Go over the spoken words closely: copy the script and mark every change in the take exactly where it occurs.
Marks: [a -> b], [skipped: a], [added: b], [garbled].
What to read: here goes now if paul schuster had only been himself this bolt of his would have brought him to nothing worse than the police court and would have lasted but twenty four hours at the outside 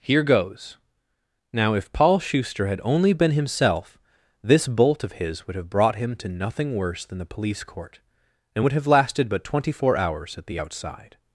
here goes now if paul schuster had only been himself this bolt of his would have brought him to nothing worse than the police court and would have lasted but twenty four hours at the outside